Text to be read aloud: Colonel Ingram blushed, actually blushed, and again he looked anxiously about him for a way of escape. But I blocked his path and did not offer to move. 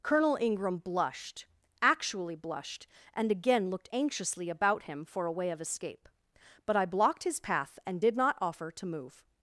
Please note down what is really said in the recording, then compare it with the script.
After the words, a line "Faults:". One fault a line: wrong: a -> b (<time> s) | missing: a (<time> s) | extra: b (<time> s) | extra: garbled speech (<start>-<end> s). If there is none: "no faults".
Colonel Ingram blushed, actually blushed, and again looked anxiously about him for a way of escape. But I blocked his path and did not offer to move.
Faults:
missing: he (3.7 s)